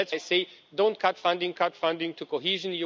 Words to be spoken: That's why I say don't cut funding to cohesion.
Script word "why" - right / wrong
wrong